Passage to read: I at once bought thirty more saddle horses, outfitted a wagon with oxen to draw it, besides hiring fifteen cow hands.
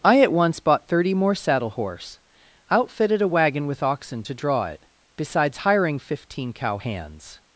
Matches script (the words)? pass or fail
fail